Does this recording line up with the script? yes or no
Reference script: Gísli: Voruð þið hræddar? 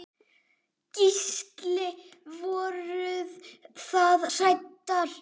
yes